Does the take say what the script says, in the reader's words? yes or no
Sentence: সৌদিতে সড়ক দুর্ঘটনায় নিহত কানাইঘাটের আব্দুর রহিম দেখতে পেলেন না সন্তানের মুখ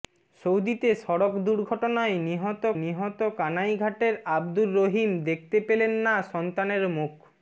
no